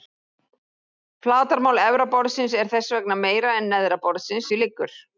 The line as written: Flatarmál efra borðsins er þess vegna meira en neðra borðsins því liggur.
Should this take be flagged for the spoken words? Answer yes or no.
no